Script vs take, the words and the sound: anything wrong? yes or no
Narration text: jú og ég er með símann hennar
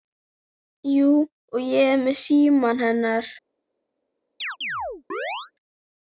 yes